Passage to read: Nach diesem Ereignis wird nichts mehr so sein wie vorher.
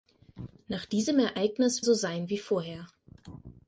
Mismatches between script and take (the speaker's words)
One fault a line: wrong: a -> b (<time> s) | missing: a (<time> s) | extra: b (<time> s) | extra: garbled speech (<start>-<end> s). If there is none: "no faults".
missing: wird nichts mehr (1.9 s)